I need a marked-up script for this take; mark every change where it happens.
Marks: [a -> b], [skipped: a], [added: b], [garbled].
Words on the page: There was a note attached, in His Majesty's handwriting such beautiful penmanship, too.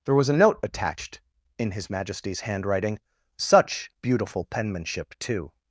There was a note attached, in His Majesty's handwriting such beautiful penmanship, too.